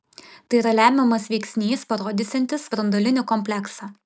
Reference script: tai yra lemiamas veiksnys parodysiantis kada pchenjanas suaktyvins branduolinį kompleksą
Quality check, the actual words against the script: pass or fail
fail